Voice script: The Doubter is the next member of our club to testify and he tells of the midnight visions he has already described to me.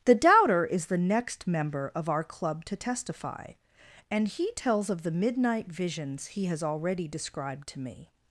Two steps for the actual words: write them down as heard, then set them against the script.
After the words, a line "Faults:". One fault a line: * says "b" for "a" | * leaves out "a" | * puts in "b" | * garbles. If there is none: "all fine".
The Doubter is the next member of our club to testify and he tells of the midnight visions he has already described to me.
Faults:
all fine